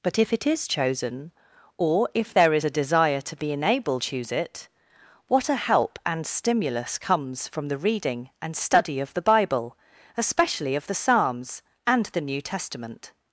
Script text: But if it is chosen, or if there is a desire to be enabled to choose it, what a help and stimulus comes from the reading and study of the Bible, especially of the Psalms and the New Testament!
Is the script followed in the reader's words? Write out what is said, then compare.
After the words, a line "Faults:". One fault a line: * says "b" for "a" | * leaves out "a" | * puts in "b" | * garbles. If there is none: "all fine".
But if it is chosen, or if there is a desire to be enabled choose it, what a help and stimulus comes from the reading and study of the Bible, especially of the Psalms and the New Testament!
Faults:
* leaves out "to"